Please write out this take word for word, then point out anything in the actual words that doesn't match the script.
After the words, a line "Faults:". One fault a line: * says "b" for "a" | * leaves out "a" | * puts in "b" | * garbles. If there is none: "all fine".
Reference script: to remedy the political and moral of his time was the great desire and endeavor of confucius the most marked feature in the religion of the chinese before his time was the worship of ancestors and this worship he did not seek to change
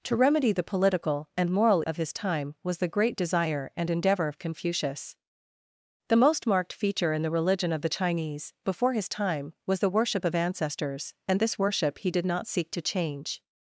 to remedy the political and moral of his time was the great desire and endeavor of confucius the most marked feature in the religion of the chinese before his time was the worship of ancestors and this worship he did not seek to change
Faults:
all fine